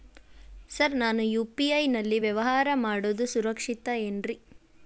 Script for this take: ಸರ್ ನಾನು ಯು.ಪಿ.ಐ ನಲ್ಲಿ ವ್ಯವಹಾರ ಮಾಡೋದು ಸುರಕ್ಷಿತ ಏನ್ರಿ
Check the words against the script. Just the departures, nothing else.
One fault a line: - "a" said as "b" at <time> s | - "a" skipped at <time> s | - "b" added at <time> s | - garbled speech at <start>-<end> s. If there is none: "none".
none